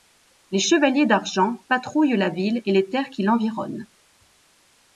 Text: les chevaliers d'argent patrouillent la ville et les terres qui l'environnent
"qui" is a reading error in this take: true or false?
false